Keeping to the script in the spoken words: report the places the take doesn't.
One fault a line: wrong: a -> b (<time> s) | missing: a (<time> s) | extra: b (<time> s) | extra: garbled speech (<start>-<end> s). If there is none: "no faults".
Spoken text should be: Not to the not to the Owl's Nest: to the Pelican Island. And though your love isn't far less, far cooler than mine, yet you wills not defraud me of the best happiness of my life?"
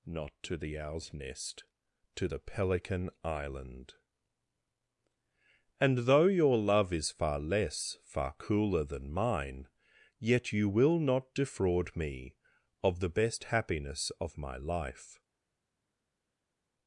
missing: not to the (0.8 s)
wrong: isn't -> is (6.9 s)
wrong: wills -> will (10.7 s)